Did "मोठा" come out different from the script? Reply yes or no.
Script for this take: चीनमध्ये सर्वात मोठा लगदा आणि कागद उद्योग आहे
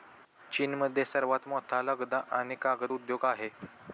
no